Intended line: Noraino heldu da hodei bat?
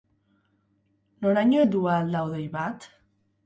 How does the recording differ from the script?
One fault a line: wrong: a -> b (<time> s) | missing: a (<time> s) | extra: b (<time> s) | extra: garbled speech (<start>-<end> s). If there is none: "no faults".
extra: ahal (1.9 s)